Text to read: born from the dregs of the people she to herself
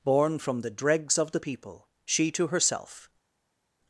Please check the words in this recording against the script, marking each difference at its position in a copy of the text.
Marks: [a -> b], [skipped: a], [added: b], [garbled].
born from the dregs of the people she to herself